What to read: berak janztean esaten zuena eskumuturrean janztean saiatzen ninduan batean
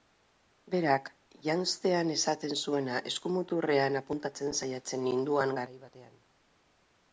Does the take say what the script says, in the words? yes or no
no